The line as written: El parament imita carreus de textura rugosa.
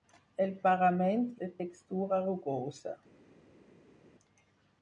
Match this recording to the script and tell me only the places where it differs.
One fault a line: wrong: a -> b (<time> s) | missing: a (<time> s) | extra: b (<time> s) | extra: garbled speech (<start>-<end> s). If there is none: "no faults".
missing: imita carreus (1.3 s)